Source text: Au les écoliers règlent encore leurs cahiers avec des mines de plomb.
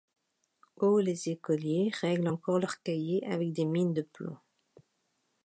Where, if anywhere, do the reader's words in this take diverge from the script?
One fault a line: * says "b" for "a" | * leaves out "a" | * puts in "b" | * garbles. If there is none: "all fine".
all fine